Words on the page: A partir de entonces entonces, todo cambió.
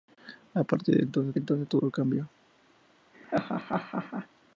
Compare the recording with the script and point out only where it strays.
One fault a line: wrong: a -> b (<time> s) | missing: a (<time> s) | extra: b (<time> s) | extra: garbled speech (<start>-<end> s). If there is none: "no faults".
no faults